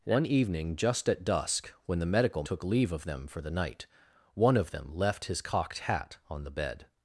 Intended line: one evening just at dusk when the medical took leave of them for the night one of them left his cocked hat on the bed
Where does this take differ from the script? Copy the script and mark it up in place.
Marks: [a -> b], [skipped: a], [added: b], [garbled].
one evening just at dusk when the medical took leave of them for the night one of them left his cocked hat on the bed